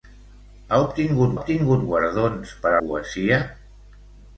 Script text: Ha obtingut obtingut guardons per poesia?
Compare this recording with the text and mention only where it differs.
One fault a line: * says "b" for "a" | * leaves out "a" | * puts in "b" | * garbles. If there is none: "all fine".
all fine